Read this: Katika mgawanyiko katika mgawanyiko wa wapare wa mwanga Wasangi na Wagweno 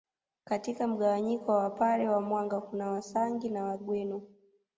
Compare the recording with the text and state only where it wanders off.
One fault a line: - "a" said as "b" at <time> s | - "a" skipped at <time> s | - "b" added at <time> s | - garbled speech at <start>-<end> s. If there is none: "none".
- "katika mgawanyiko" skipped at 1.5 s
- "kuna" added at 2.6 s